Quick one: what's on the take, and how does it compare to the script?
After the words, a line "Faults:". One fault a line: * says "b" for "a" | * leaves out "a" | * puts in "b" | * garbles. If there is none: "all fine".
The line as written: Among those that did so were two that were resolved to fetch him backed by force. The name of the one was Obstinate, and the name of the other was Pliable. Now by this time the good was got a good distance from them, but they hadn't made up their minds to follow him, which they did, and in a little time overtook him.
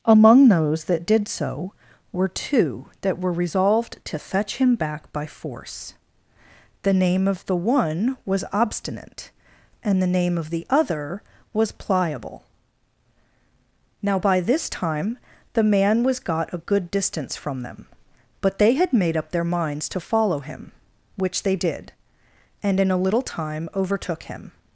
Among those that did so were two that were resolved to fetch him back by force. The name of the one was Obstinate, and the name of the other was Pliable. Now by this time the man was got a good distance from them, but they had made up their minds to follow him, which they did, and in a little time overtook him.
Faults:
* says "back" for "backed"
* says "man" for "good"
* says "had" for "hadn't"